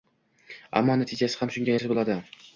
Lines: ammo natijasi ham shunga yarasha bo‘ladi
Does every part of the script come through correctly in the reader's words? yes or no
yes